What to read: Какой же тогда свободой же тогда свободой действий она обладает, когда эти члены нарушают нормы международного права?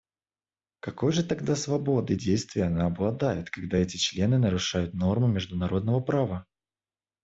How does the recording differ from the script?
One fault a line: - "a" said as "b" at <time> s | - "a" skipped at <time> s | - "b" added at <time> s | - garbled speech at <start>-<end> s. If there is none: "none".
- "же тогда свободой" skipped at 2.1 s